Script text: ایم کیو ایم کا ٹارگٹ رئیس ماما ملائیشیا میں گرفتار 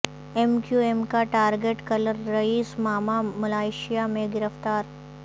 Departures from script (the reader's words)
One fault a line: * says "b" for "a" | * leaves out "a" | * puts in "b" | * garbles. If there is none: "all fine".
* puts in "کلر"